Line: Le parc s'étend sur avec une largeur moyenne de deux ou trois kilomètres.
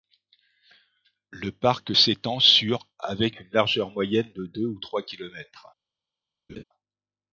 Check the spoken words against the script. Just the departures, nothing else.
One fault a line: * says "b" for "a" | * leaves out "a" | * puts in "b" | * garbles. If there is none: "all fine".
all fine